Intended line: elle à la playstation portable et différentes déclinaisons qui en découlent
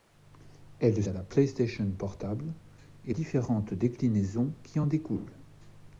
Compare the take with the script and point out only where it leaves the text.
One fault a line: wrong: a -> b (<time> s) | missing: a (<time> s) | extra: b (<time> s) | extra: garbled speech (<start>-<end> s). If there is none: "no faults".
no faults